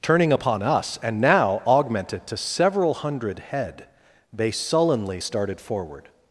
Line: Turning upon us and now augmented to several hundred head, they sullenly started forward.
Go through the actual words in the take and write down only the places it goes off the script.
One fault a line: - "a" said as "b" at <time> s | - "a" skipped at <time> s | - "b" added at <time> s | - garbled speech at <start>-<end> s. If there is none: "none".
none